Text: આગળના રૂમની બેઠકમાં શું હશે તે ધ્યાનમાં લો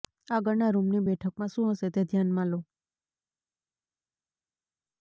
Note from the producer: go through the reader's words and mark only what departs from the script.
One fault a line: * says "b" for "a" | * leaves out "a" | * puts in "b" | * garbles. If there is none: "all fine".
all fine